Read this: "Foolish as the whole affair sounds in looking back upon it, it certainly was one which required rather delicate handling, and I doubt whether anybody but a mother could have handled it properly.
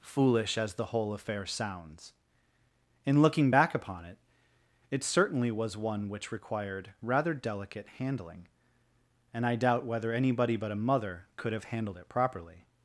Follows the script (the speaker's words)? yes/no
yes